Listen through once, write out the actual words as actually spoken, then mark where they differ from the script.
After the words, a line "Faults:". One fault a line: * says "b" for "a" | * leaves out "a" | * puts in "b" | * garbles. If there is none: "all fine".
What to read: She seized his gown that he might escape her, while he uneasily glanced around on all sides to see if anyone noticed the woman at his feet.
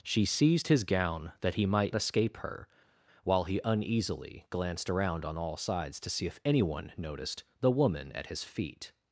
She seized his gown that he might escape her, while he uneasily glanced around on all sides to see if anyone noticed the woman at his feet.
Faults:
all fine